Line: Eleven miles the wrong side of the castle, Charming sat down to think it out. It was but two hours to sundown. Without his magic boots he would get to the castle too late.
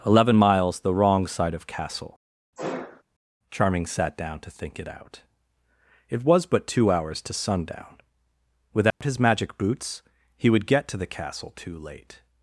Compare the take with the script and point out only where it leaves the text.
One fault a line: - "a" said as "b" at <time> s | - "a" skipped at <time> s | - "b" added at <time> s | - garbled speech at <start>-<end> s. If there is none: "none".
- "the" skipped at 1.7 s